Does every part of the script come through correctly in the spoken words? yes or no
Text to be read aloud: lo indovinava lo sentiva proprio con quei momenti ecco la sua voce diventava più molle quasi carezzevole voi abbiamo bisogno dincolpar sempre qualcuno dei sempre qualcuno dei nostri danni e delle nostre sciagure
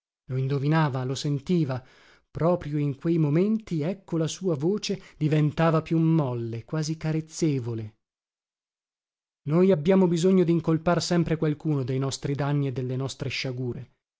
no